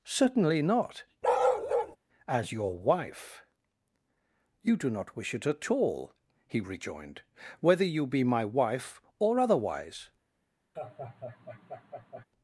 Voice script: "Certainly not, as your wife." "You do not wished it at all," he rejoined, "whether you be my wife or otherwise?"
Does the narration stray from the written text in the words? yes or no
yes